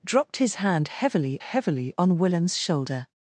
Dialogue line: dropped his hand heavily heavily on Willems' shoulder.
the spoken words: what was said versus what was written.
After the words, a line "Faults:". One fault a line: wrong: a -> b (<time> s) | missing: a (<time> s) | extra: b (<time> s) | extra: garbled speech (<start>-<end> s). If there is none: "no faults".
dropped his hand heavily heavily on Willems' shoulder.
Faults:
no faults